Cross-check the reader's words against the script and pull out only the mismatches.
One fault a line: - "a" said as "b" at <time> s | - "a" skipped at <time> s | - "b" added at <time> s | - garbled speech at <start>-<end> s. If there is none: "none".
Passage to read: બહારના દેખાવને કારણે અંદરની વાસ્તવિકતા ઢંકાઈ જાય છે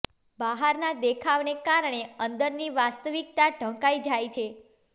none